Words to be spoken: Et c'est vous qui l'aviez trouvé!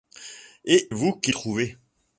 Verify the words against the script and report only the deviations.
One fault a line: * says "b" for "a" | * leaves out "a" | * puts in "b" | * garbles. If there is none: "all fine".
* leaves out "c'est"
* leaves out "l'aviez"